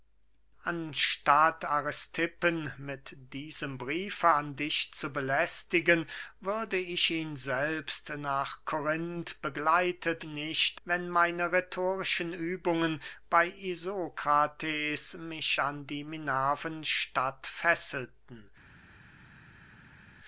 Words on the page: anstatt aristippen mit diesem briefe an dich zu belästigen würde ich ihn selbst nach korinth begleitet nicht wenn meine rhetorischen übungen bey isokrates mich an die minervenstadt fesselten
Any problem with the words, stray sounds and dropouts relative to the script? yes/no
no